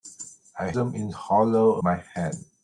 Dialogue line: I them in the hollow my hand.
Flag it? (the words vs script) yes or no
no